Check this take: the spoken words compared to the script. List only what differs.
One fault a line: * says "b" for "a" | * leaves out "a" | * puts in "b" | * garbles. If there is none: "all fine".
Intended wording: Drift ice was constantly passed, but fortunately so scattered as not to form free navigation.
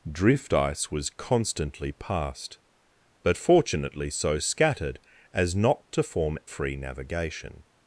all fine